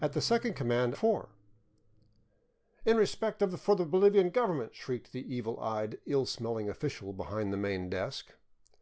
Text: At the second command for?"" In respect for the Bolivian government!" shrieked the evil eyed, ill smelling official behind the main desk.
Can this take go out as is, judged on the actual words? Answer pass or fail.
pass